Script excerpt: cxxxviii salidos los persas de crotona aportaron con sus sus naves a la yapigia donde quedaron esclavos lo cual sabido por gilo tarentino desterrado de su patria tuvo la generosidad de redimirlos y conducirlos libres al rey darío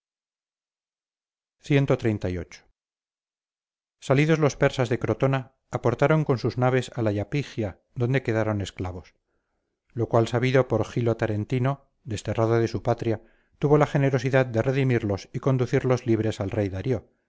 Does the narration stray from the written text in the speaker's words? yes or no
yes